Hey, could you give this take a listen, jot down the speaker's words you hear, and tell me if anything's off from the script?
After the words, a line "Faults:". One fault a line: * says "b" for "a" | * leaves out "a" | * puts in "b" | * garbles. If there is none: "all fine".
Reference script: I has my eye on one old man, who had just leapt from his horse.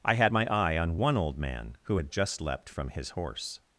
I had my eye on one old man, who had just leapt from his horse.
Faults:
* says "had" for "has"